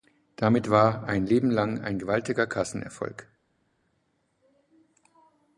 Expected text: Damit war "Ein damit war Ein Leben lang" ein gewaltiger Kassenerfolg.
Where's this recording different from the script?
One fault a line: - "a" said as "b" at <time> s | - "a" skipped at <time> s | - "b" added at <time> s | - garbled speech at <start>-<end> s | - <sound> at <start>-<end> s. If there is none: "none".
- "damit war Ein" skipped at 1.3 s